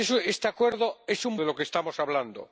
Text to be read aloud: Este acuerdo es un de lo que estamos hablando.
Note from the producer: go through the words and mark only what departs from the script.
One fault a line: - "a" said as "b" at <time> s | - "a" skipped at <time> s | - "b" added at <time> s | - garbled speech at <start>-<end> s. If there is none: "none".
none